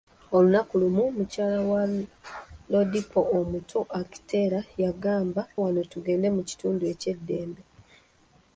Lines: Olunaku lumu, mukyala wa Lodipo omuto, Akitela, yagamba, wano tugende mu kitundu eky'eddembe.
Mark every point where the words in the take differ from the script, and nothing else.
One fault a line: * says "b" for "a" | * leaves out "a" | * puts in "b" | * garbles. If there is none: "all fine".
all fine